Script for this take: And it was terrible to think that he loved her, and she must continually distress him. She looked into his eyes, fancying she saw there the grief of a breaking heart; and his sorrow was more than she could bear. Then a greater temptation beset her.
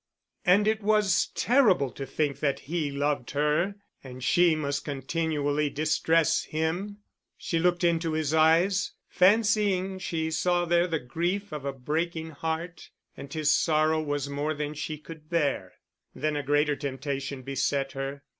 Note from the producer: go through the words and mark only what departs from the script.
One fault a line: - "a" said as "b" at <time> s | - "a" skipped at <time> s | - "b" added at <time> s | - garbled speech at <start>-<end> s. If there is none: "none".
none